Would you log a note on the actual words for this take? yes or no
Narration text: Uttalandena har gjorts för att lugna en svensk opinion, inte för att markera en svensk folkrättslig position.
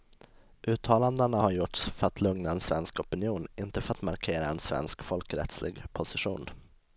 no